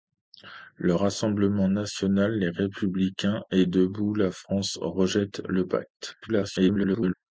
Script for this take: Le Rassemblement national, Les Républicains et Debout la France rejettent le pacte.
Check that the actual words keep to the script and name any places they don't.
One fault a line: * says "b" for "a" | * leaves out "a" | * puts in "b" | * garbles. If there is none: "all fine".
* garbles